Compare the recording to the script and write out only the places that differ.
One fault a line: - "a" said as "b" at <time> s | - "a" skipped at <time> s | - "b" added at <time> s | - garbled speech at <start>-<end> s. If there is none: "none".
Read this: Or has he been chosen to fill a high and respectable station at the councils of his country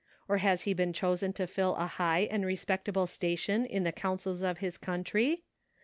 - "at" said as "in" at 3.7 s